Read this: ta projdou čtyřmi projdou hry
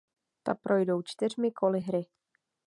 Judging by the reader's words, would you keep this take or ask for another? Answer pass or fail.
fail